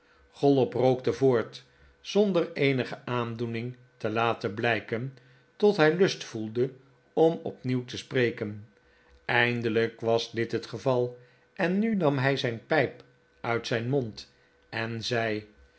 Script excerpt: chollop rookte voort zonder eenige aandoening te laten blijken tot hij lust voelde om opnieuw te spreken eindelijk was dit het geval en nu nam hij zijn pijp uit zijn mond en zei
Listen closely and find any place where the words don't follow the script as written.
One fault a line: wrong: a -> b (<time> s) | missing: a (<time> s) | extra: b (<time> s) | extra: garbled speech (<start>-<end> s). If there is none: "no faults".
no faults